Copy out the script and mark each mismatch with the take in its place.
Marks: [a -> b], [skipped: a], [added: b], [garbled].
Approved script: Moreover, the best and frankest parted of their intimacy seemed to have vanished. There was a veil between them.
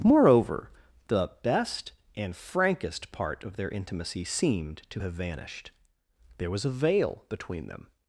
Moreover, the best and frankest [parted -> part] of their intimacy seemed to have vanished. There was a veil between them.